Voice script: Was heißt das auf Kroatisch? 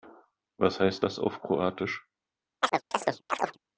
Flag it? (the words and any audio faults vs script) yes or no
yes